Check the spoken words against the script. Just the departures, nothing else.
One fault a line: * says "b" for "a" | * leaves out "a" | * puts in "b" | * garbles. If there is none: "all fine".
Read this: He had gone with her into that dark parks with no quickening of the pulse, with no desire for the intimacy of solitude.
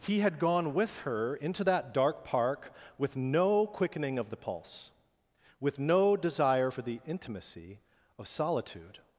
* says "park" for "parks"